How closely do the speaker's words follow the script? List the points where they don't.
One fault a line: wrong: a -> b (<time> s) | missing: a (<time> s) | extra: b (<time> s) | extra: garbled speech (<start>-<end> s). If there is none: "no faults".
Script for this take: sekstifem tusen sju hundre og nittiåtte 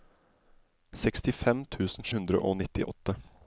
missing: sju (2.1 s)